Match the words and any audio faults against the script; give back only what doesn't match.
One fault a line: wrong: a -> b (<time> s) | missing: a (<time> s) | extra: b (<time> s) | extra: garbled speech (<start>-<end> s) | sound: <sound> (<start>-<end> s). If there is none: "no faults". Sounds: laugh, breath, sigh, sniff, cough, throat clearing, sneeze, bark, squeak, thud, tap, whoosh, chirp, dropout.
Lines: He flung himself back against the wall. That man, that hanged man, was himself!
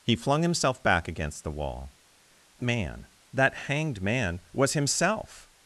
missing: That (1.9 s)